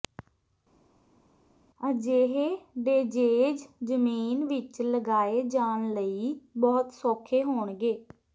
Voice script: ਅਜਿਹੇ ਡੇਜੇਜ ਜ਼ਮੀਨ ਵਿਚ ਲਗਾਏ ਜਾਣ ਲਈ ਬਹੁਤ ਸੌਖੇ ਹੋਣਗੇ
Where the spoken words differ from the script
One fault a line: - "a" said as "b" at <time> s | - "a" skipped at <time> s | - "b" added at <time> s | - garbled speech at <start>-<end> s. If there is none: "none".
none